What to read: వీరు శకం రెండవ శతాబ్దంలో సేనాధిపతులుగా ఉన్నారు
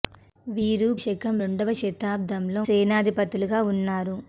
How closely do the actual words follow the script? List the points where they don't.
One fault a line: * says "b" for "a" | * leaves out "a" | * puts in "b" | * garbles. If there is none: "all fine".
all fine